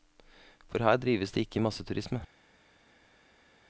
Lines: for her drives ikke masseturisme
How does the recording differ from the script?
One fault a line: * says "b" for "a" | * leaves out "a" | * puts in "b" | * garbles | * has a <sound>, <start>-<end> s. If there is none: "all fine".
* puts in "det"